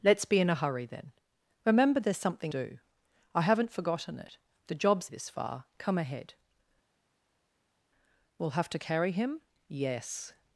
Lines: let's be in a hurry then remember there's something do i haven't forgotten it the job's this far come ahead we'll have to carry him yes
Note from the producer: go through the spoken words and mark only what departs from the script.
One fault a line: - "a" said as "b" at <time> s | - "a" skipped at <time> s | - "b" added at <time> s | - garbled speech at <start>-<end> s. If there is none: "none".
none